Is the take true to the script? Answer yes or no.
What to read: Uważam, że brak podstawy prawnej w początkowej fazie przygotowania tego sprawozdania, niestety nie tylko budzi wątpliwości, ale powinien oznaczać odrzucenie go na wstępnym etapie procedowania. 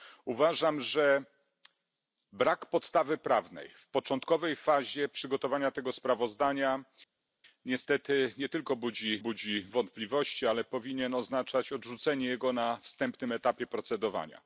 no